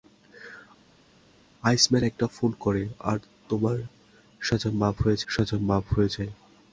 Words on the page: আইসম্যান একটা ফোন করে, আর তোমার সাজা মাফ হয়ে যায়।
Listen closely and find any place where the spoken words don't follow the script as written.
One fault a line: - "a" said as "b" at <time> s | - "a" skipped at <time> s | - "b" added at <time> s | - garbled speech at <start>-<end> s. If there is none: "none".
- "সাজা মাফ হয়ে" added at 5.3 s